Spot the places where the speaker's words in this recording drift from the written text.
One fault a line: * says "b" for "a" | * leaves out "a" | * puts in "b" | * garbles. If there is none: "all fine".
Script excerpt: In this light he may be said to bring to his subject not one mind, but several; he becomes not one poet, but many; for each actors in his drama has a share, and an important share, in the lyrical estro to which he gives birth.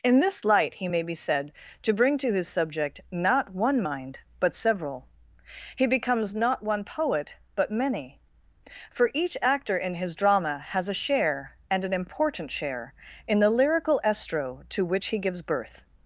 * says "actor" for "actors"